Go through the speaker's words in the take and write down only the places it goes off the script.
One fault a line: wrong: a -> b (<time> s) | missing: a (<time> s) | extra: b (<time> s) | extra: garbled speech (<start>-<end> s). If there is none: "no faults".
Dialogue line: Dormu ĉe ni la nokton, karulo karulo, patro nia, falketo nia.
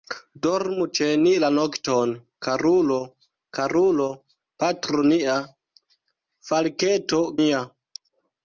no faults